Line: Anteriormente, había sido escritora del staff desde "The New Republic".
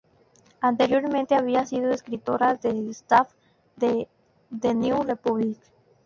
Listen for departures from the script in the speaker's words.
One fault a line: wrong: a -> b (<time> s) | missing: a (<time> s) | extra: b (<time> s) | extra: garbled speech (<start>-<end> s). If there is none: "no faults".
wrong: desde -> de (3.8 s)